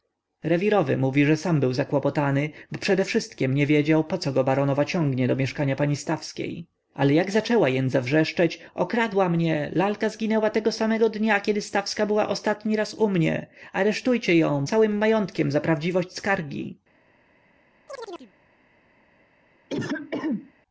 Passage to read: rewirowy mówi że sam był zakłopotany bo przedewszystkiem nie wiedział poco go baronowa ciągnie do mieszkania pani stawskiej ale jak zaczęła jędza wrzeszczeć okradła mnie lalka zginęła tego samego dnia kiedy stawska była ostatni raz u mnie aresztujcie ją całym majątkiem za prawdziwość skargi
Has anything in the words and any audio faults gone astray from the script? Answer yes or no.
yes